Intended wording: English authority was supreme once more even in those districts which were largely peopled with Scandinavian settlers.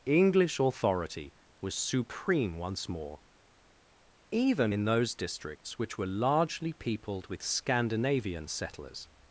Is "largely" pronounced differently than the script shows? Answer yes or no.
no